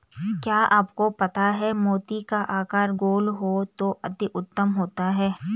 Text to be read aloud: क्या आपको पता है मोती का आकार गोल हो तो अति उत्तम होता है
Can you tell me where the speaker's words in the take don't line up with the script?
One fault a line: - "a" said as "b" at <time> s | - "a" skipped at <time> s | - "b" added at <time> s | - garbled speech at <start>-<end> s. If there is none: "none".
none